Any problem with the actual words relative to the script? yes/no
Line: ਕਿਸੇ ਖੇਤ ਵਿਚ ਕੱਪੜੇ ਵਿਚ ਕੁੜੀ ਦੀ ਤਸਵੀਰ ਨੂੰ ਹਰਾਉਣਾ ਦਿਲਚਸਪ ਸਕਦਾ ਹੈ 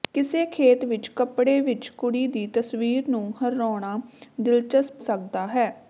no